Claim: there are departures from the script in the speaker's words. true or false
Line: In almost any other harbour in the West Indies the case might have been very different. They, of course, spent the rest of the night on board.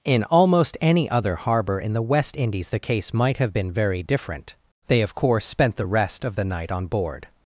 false